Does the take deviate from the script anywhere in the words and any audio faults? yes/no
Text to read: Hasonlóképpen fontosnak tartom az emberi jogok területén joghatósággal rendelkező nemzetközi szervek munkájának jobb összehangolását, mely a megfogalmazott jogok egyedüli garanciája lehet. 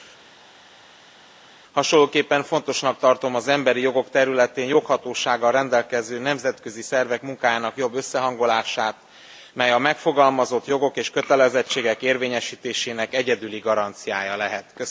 yes